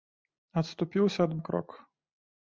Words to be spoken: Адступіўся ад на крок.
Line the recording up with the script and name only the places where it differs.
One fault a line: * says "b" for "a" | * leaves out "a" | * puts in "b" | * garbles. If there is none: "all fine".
all fine